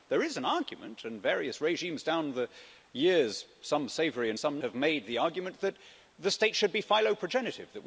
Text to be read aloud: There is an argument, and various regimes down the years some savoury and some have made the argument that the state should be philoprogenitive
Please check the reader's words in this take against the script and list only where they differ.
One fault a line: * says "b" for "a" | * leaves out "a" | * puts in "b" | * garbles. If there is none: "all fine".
all fine